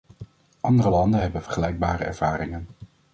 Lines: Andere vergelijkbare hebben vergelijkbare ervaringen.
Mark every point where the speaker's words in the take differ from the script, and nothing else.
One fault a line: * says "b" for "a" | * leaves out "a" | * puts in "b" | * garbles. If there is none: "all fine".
* says "landen" for "vergelijkbare"